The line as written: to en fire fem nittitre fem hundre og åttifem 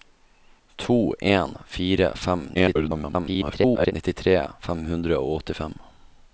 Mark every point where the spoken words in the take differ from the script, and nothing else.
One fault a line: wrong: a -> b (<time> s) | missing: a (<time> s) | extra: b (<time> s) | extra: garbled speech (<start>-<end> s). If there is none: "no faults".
extra: garbled speech (2.5-3.9 s)